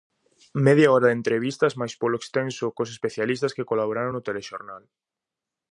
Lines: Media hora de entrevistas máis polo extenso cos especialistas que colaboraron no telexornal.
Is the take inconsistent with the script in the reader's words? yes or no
no